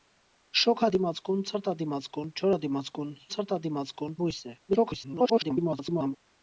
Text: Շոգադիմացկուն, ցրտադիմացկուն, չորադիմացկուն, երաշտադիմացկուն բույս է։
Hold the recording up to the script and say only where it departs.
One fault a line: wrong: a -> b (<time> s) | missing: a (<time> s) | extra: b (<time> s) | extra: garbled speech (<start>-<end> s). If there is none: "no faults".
wrong: երաշտադիմացկուն -> ցրտադիմացկուն (3.4 s)
extra: garbled speech (4.7-6.2 s)